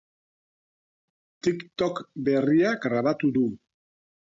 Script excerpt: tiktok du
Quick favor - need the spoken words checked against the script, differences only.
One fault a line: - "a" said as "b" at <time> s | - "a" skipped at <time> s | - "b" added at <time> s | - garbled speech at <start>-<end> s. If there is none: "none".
- "berria grabatu" added at 2.3 s